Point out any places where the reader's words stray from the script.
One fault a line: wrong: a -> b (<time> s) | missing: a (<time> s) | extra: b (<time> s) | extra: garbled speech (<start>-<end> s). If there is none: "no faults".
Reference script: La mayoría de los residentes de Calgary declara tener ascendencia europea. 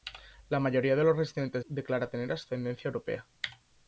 missing: de Calgary (1.6 s)